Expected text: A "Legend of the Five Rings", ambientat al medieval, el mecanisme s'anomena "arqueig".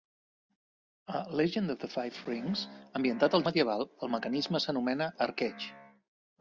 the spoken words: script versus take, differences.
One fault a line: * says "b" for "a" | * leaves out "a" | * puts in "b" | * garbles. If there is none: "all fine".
all fine